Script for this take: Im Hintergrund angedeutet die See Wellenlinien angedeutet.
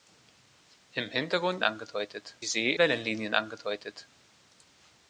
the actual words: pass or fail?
pass